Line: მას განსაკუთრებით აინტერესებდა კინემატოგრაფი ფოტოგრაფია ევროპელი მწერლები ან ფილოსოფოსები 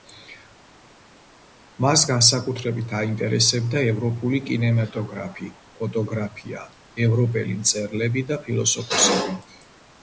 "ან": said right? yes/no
no